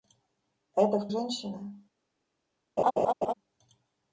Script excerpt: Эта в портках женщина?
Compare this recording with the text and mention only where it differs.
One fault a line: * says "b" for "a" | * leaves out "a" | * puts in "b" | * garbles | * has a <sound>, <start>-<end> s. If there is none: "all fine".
* leaves out "портках"
* has a laugh, 2.8-3.3 s